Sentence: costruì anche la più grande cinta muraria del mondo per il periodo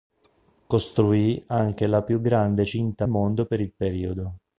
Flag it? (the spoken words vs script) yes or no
yes